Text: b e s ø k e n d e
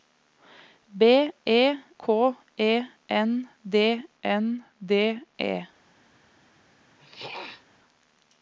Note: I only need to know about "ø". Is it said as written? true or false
false